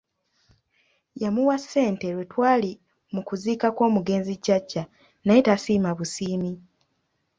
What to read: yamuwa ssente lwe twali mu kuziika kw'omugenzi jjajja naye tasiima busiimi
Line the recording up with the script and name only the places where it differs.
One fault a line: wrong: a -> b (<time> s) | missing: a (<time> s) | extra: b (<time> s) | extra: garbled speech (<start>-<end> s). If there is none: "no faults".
no faults